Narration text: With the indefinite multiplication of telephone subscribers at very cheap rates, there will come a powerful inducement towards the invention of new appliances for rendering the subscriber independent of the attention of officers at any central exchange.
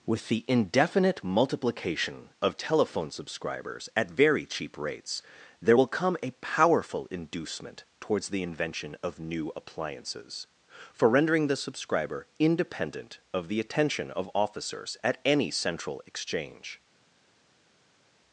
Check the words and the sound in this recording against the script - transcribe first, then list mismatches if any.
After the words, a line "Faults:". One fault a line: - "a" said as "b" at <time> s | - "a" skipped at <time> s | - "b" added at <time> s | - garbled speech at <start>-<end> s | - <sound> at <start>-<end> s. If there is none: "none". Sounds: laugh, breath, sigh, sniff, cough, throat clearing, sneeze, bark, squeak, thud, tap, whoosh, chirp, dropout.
With the indefinite multiplication of telephone subscribers at very cheap rates, there will come a powerful inducement towards the invention of new appliances for rendering the subscriber independent of the attention of officers at any central exchange.
Faults:
none